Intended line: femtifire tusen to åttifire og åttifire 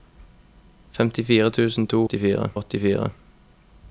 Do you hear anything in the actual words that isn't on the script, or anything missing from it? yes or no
no